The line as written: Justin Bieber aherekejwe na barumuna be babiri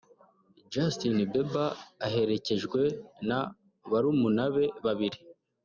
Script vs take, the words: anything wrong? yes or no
no